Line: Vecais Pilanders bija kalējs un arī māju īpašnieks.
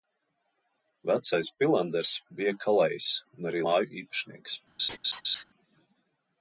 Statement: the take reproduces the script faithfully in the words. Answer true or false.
true